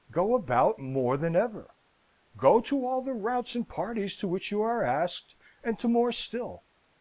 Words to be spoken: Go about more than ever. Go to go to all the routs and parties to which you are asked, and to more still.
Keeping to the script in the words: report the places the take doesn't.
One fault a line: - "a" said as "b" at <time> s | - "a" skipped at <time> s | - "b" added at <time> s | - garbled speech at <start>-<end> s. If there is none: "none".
- "go to" skipped at 2.9 s